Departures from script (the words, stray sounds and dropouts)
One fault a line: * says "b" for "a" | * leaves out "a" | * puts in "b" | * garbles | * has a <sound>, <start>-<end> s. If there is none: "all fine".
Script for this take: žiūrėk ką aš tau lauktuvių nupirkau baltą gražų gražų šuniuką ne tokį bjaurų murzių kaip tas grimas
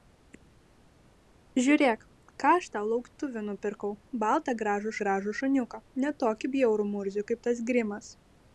all fine